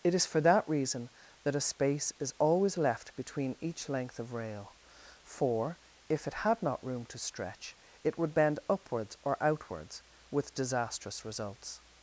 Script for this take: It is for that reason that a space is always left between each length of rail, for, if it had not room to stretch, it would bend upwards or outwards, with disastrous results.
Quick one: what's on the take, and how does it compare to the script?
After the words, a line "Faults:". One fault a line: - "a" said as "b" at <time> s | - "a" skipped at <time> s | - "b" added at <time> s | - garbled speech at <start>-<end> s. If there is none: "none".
It is for that reason that a space is always left between each length of rail, for, if it had not room to stretch, it would bend upwards or outwards, with disastrous results.
Faults:
none